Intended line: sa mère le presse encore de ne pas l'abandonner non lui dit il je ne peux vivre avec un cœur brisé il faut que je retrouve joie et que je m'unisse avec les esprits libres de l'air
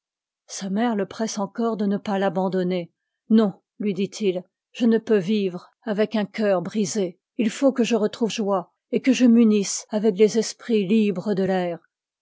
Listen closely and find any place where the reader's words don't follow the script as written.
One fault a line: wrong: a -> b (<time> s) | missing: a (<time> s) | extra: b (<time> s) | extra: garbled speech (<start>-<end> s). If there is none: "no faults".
no faults